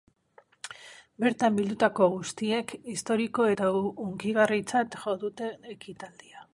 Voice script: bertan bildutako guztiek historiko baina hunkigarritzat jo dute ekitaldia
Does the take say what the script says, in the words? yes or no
no